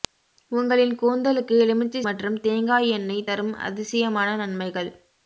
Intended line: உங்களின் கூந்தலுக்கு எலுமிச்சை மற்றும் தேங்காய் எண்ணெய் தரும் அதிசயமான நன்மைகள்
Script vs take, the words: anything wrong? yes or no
no